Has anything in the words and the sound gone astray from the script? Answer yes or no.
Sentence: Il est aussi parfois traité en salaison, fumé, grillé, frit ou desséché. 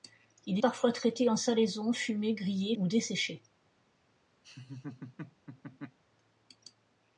yes